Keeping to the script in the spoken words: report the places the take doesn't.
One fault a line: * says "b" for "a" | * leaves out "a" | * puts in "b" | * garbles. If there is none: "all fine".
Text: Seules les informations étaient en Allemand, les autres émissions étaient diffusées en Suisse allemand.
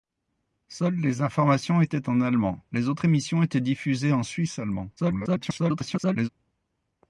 * garbles